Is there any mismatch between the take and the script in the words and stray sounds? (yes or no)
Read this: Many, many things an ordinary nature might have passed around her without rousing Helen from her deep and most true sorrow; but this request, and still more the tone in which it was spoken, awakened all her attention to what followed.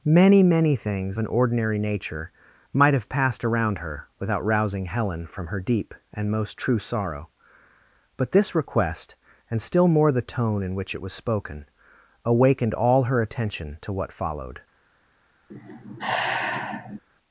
yes